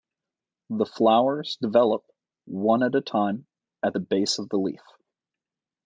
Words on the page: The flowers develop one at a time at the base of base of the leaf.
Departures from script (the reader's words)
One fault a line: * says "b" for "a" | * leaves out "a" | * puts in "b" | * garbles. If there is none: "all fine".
* leaves out "base of"